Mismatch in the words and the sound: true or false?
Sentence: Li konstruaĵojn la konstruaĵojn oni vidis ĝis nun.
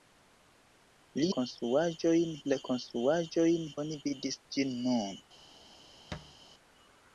true